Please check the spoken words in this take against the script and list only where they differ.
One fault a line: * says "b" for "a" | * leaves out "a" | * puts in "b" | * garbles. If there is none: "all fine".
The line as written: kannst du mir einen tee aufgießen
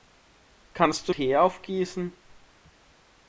* leaves out "mir einen"